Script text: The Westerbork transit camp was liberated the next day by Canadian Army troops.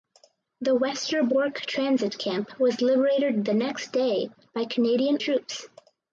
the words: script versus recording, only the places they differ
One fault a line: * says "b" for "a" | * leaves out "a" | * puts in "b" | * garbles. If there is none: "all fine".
* leaves out "Army"